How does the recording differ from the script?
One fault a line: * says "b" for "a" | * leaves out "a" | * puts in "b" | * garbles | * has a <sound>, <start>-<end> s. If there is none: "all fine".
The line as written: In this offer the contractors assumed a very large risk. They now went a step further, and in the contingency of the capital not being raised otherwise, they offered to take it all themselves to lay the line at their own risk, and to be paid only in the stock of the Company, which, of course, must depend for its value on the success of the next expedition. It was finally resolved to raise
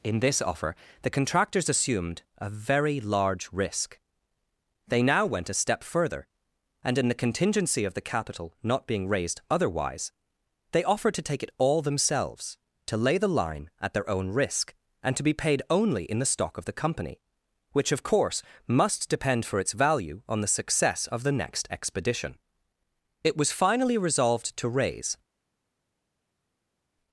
all fine